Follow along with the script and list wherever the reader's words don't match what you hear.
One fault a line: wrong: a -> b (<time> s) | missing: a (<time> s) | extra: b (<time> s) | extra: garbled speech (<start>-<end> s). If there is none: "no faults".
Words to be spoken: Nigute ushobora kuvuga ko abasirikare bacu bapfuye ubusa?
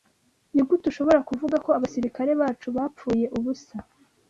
no faults